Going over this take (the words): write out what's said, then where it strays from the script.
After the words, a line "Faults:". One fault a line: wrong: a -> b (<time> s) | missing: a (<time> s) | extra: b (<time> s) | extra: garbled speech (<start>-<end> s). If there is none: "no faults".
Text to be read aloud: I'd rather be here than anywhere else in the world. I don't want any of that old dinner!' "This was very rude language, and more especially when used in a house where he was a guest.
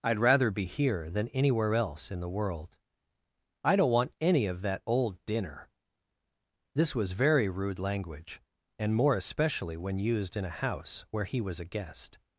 I'd rather be here than anywhere else in the world. I don't want any of that old dinner!' "This was very rude language, and more especially when used in a house where he was a guest.
Faults:
no faults